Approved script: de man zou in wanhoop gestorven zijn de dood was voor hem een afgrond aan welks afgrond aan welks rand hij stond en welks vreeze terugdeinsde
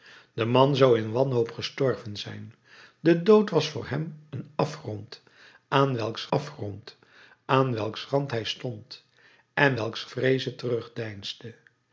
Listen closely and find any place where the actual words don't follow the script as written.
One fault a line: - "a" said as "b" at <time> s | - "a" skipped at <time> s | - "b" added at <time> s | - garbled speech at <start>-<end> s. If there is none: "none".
none